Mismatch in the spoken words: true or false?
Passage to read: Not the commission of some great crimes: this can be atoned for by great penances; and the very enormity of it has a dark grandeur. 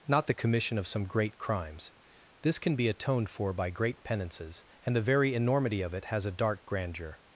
false